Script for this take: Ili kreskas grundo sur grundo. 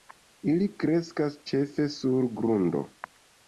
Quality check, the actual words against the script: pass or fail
fail